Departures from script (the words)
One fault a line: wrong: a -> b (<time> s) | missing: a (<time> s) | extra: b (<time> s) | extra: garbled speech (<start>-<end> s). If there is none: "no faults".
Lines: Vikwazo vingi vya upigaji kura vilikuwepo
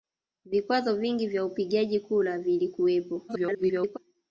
extra: garbled speech (3.3-4.0 s)